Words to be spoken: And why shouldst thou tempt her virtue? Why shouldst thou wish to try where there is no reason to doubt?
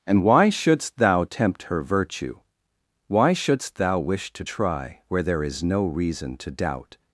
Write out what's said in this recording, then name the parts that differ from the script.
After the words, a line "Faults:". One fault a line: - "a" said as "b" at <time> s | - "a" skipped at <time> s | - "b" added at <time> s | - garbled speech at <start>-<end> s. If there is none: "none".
And why shouldst thou tempt her virtue? Why shouldst thou wish to try where there is no reason to doubt?
Faults:
none